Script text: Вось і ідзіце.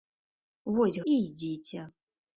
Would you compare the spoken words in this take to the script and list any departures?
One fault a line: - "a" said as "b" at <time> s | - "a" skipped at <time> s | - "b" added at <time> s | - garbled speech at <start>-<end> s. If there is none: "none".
none